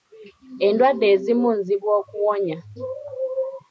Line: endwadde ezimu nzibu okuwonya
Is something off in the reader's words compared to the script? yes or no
no